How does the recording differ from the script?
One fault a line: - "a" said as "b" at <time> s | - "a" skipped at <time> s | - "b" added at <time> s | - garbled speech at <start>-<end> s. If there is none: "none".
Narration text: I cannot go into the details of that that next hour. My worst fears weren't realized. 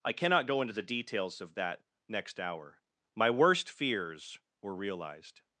- "that" skipped at 1.8 s
- "weren't" said as "were" at 4.6 s